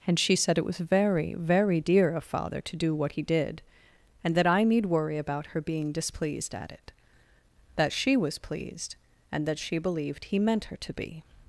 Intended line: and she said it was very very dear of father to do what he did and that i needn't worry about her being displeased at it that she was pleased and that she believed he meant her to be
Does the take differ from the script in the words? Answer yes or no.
yes